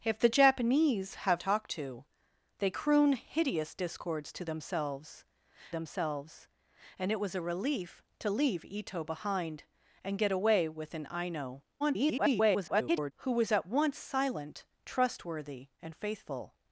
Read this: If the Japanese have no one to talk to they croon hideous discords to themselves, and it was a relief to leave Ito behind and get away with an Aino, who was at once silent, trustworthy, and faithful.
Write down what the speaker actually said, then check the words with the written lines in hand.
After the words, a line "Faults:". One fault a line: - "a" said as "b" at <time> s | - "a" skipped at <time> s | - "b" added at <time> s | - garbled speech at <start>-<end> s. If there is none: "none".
If the Japanese have talk to they croon hideous discords to themselves themselves, and it was a relief to leave Ito behind and get away with an Aino, [garbled] who was at once silent, trustworthy, and faithful.
Faults:
- "no one to" skipped at 1.4 s
- "themselves" added at 5.7 s
- garbled speech at 11.8-13.1 s